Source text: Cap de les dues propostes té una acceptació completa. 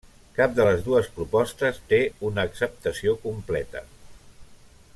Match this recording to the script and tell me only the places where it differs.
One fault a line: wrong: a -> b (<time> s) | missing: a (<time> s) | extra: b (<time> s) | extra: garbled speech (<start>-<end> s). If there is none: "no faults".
no faults